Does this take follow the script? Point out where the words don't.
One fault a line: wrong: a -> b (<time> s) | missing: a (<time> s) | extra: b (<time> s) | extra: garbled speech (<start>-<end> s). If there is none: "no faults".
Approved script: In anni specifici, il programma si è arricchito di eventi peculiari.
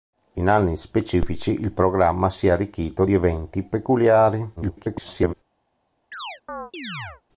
extra: garbled speech (4.6-5.3 s)